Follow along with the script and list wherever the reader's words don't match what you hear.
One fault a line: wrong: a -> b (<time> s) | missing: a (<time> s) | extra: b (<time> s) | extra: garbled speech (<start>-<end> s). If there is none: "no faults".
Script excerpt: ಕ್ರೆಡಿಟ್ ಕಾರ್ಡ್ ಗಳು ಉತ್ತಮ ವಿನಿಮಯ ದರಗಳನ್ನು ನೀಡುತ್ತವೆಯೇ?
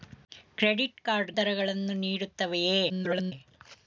missing: ಗಳು ಉತ್ತಮ ವಿನಿಮಯ (1.3 s)
extra: garbled speech (2.9-3.3 s)